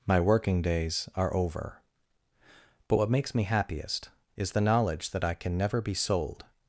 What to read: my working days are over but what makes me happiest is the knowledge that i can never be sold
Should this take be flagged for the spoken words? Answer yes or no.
no